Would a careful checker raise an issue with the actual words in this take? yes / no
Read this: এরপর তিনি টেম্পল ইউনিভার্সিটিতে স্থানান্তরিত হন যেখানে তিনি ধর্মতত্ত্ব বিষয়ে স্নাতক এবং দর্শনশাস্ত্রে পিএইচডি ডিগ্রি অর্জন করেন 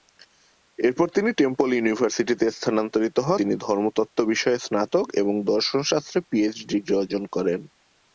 yes